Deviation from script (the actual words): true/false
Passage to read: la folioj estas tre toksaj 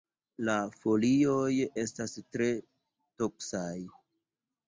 false